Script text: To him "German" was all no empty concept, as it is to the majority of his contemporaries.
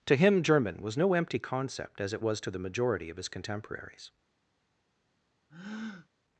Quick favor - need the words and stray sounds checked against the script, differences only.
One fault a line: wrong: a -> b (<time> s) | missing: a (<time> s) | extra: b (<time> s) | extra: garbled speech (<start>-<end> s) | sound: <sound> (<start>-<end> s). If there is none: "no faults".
missing: all (1.0 s)
wrong: is -> was (2.2 s)
sound: breath (5.5-6.1 s)